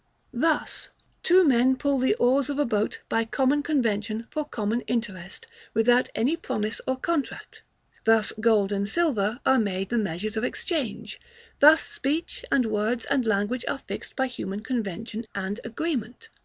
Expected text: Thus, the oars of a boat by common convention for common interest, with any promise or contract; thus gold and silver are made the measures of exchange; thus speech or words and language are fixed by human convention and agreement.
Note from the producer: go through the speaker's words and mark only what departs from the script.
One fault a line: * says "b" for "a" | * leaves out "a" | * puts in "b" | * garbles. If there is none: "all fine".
* puts in "two men pull"
* says "without" for "with"
* says "and" for "or"